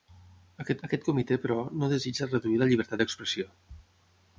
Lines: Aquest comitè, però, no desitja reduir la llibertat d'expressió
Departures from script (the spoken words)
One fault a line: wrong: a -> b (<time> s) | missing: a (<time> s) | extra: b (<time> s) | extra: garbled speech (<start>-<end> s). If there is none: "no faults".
extra: aquest (0.9 s)